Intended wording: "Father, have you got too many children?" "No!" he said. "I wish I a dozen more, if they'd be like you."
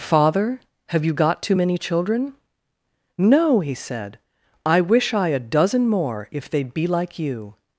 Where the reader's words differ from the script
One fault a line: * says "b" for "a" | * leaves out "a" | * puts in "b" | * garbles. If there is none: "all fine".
all fine